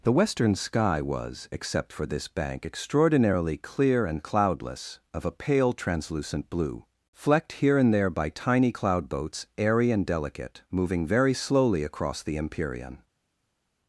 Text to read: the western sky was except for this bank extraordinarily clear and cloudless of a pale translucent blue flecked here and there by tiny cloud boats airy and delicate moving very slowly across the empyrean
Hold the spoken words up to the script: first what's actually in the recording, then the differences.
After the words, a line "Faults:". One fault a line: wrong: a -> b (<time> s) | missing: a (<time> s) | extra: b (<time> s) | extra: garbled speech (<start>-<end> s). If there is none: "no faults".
the western sky was except for this bank extraordinarily clear and cloudless of a pale translucent blue flecked here and there by tiny cloud boats airy and delicate moving very slowly across the empyrean
Faults:
no faults